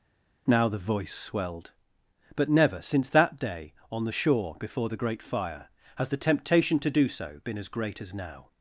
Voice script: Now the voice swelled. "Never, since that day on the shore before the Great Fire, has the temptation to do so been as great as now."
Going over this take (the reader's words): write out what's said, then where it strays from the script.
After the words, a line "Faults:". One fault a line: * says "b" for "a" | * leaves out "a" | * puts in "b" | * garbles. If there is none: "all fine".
Now the voice swelled. "But never, since that day on the shore before the Great Fire, has the temptation to do so been as great as now."
Faults:
* puts in "But"